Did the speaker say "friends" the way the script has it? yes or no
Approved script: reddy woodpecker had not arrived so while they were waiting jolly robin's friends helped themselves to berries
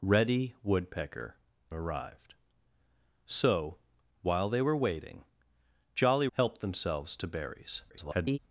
no